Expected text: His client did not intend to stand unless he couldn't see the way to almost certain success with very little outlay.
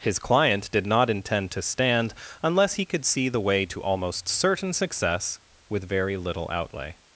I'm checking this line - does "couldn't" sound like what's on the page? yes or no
no